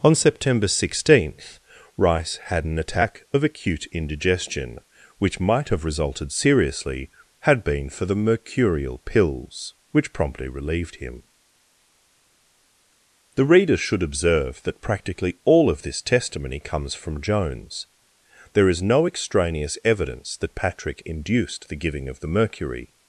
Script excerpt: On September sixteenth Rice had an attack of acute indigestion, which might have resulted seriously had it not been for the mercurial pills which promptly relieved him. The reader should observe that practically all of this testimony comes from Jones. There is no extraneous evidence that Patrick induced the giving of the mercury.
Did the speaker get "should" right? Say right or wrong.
right